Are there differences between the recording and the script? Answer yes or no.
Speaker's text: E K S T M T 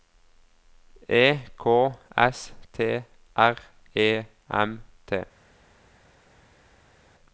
yes